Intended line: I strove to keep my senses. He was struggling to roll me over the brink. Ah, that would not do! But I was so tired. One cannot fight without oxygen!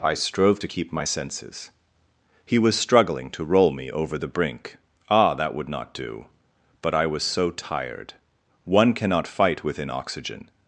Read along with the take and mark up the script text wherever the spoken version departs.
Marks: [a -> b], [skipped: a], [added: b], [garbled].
I strove to keep my senses. He was struggling to roll me over the brink. Ah, that would not do! But I was so tired. One cannot fight [without -> within] oxygen!